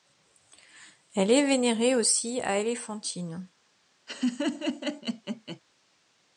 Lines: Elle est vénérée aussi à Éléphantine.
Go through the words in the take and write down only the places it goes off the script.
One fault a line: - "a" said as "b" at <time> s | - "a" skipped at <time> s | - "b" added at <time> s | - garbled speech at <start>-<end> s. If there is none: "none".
none